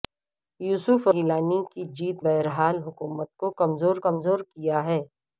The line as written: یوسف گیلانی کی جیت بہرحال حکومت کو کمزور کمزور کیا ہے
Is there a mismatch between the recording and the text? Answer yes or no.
no